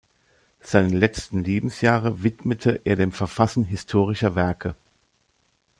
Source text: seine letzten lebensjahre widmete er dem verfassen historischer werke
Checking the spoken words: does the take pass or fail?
pass